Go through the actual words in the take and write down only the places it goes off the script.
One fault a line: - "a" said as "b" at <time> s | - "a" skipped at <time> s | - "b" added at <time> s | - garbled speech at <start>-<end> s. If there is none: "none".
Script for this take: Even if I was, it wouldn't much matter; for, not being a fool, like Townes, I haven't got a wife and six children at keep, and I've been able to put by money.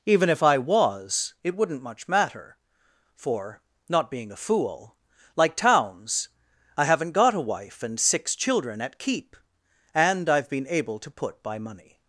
none